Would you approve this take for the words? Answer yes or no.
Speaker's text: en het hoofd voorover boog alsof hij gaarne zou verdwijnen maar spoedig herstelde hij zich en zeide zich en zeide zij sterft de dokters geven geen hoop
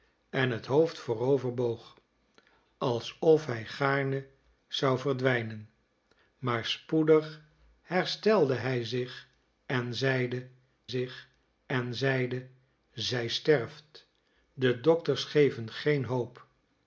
yes